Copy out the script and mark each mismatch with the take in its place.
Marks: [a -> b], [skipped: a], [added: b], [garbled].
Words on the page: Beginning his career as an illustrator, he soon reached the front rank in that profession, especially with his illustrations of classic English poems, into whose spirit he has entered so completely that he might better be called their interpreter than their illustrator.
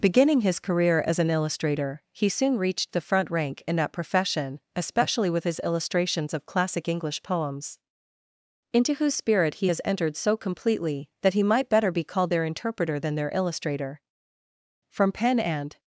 Beginning his career as an illustrator, he soon reached the front rank in that profession, especially with his illustrations of classic English poems, into whose spirit he has entered so completely that he might better be called their interpreter than their illustrator. [added: From pen and]